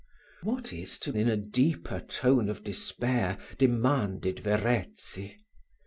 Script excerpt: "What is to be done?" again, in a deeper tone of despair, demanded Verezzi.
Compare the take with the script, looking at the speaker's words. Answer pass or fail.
fail